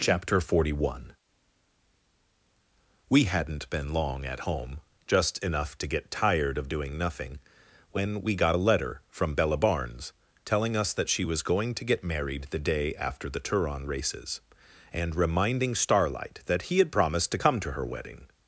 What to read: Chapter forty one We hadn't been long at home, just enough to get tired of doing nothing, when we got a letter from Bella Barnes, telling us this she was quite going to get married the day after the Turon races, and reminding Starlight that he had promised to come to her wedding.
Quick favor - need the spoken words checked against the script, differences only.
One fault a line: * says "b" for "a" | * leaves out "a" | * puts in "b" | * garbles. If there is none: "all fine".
* says "that" for "this"
* leaves out "quite"